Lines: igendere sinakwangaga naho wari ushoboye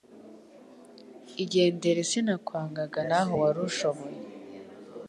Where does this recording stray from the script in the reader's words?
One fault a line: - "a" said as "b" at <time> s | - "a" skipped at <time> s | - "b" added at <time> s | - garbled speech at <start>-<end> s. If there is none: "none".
none